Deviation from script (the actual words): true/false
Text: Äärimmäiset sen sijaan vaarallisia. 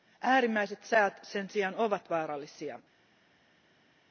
true